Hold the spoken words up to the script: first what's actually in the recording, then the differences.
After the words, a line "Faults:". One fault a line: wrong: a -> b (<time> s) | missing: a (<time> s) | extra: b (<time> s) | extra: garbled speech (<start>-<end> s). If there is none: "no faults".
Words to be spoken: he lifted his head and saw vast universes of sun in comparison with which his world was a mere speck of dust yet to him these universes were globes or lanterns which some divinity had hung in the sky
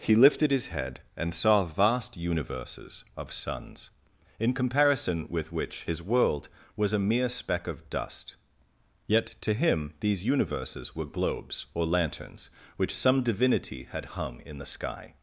he lifted his head and saw vast universes of suns in comparison with which his world was a mere speck of dust yet to him these universes were globes or lanterns which some divinity had hung in the sky
Faults:
wrong: sun -> suns (3.3 s)